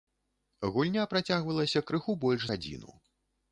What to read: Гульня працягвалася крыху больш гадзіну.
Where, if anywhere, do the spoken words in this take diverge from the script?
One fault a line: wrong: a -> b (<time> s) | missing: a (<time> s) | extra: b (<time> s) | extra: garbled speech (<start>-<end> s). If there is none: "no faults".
no faults